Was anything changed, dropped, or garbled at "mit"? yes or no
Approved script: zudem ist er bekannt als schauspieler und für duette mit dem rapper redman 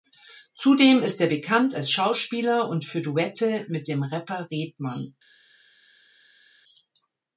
no